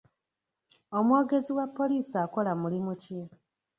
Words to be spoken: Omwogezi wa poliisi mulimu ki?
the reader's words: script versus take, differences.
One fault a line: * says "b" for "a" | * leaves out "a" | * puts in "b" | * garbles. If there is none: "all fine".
* puts in "akola"